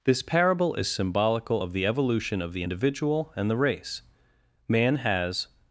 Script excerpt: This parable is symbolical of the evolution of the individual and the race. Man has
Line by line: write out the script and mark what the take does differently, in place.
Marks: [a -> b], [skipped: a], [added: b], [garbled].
This parable is symbolical of the evolution of the individual and the race. Man has